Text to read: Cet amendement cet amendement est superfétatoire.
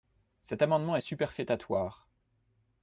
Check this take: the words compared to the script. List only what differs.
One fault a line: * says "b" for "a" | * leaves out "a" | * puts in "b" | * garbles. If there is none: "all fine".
* leaves out "cet amendement"